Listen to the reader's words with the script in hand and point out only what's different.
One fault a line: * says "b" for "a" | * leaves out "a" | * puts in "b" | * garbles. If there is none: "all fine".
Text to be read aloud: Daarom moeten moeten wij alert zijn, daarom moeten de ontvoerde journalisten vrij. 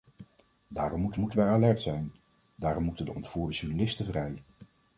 all fine